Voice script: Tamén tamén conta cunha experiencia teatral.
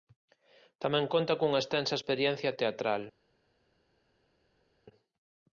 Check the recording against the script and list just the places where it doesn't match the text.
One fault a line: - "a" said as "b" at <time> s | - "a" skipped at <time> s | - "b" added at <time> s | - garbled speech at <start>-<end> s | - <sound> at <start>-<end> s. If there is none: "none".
- "tamén" skipped at 1.1 s
- "extensa" added at 1.6 s